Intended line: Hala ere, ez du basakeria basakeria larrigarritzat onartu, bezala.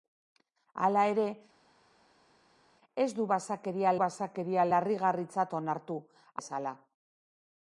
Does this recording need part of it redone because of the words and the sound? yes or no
no